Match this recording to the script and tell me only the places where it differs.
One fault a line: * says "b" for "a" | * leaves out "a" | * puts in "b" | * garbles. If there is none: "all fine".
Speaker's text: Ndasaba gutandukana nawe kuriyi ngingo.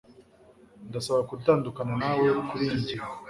all fine